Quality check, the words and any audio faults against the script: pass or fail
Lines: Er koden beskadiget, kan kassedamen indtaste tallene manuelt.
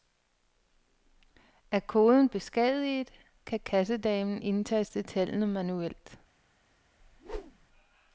fail